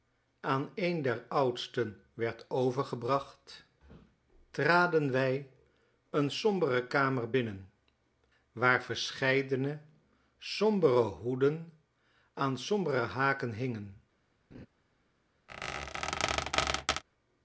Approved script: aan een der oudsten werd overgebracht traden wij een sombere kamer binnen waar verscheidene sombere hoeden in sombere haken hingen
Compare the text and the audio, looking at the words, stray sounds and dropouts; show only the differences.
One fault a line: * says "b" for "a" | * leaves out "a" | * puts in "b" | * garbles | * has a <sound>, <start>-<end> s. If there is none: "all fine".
* says "aan" for "in"
* has a laugh, 14.5-14.7 s
* has a squeak, 15.5-17.0 s